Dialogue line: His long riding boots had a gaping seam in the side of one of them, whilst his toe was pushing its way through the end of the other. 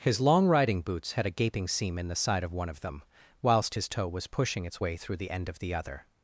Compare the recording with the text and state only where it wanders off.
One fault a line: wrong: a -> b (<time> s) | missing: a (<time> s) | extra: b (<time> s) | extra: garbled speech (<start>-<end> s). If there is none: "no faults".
no faults